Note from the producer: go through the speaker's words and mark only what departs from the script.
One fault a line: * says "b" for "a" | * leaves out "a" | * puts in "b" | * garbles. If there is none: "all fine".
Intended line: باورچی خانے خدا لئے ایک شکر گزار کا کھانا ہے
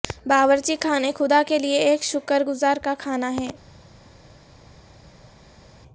* puts in "کے"